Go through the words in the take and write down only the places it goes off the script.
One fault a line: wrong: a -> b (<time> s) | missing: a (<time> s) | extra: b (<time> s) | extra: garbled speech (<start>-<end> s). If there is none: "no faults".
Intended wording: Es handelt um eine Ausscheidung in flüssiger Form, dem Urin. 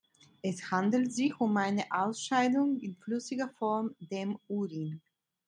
extra: sich (1.1 s)